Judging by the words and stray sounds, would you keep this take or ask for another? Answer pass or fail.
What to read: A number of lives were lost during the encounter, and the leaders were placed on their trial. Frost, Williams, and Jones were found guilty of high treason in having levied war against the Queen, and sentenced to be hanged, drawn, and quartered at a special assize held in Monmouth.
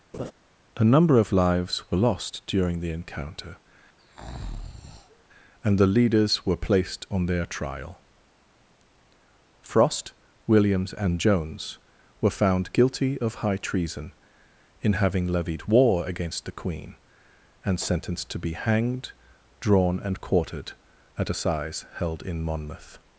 fail